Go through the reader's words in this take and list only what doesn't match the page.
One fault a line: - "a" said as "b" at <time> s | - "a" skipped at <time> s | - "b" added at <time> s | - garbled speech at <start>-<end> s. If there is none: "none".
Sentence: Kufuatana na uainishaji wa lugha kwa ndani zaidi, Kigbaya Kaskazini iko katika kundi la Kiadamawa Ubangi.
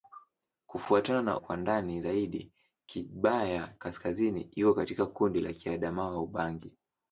- "uainishaji wa lugha" skipped at 1.4 s